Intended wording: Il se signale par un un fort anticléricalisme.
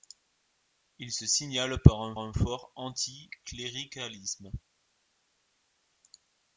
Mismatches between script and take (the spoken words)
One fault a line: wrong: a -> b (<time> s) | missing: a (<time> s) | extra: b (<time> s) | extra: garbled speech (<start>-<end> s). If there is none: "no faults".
no faults